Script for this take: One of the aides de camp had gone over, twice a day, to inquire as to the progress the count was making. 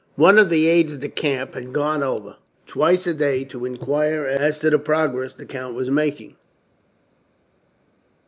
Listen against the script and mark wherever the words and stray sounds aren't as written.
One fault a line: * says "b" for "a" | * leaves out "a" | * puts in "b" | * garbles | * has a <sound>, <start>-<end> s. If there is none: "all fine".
all fine